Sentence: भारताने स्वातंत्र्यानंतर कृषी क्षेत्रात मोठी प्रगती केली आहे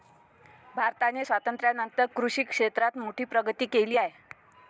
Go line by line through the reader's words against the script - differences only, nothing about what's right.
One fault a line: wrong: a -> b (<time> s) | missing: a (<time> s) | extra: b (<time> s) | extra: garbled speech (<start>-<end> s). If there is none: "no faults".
no faults